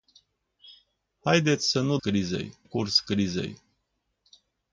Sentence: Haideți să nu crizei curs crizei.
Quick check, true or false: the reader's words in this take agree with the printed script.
true